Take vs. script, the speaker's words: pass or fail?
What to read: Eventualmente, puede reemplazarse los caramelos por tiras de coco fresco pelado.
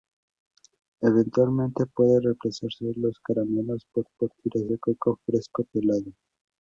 fail